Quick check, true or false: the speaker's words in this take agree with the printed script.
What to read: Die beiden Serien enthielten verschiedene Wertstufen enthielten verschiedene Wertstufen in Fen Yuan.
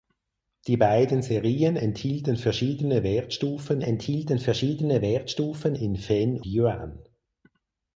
true